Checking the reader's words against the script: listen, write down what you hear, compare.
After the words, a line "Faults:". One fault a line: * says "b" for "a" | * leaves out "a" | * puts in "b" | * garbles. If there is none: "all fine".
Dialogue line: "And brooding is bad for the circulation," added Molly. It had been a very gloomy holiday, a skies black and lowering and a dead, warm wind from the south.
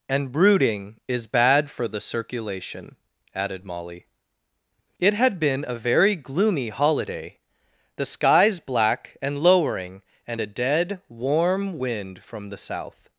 "And brooding is bad for the circulation," added Molly. It had been a very gloomy holiday, the skies black and lowering and a dead, warm wind from the south.
Faults:
* says "the" for "a"